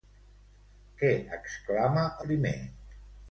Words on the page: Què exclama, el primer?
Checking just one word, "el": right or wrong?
wrong